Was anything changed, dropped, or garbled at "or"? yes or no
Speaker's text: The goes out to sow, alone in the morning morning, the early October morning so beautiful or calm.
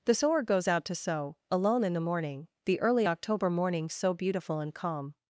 yes